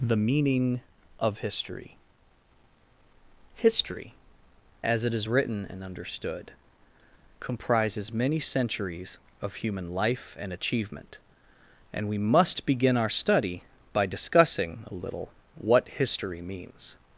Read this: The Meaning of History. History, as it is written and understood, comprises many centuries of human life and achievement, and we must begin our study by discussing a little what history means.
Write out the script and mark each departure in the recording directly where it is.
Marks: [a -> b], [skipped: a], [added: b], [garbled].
The Meaning of History. History, as it is written and understood, comprises many centuries of human life and achievement, and we must begin our study by discussing a little what history means.